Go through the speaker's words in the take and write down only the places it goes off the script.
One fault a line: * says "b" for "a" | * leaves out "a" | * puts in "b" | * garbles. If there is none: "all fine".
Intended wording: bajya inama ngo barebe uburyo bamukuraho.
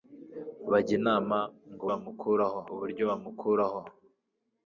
* says "bamukuraho" for "barebe"